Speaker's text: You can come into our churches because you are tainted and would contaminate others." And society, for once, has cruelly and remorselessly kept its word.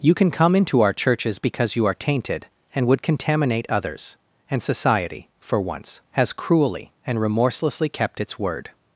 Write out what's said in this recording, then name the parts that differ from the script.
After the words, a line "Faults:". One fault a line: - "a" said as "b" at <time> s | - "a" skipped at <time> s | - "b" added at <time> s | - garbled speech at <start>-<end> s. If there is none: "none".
You can come into our churches because you are tainted and would contaminate others." And society, for once, has cruelly and remorselessly kept its word.
Faults:
none